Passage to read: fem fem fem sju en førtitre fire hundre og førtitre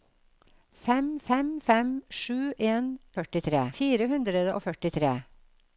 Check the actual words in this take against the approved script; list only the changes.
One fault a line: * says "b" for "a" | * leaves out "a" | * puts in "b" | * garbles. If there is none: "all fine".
all fine